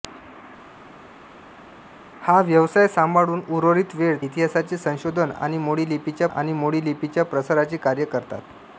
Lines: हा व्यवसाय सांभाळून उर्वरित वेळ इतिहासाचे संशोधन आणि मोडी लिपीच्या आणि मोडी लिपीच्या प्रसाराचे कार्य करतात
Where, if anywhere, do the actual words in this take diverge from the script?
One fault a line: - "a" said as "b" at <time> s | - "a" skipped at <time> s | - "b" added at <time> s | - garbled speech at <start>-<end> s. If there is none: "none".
none